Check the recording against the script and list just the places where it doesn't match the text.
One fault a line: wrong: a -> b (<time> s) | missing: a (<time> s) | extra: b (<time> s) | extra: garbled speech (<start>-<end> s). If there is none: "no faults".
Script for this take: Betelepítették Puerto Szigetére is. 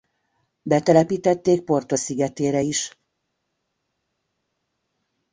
no faults